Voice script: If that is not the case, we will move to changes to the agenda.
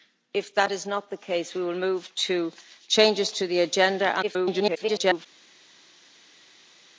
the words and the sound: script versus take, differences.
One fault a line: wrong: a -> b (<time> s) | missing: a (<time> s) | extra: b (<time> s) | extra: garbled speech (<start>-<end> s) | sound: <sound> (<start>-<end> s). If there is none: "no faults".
extra: garbled speech (4.2-5.3 s)